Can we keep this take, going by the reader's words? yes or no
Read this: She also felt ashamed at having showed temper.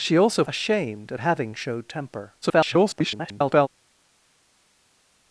no